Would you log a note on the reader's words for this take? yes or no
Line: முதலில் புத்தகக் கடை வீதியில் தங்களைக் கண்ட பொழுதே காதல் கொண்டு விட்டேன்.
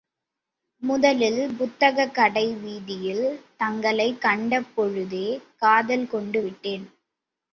no